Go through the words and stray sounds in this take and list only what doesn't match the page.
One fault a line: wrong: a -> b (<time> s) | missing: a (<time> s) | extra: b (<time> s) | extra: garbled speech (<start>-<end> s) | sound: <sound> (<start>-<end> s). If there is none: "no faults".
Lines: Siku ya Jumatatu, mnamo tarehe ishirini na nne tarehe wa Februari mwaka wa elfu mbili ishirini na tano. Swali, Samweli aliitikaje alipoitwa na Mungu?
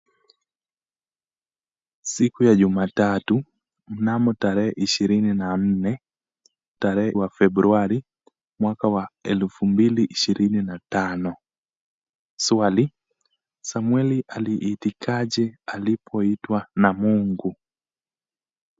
no faults